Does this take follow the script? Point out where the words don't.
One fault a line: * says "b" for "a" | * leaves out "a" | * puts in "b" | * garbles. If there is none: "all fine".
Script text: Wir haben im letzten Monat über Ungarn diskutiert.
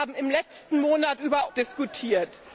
* leaves out "Ungarn"